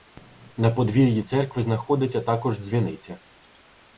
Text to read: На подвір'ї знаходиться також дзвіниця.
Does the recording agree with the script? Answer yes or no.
no